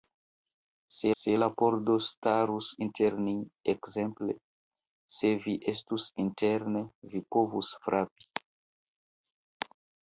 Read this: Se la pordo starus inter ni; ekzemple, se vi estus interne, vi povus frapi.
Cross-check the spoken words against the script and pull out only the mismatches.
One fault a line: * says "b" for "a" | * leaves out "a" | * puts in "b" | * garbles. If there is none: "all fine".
* puts in "se"